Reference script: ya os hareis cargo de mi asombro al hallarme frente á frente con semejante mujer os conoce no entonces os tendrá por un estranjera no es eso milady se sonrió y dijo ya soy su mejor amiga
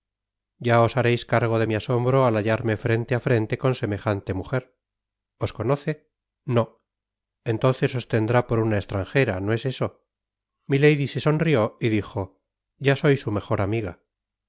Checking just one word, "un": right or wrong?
wrong